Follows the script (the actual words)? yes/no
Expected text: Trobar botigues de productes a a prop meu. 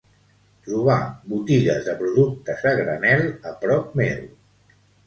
no